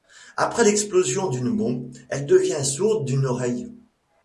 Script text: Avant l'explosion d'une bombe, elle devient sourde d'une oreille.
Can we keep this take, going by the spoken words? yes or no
no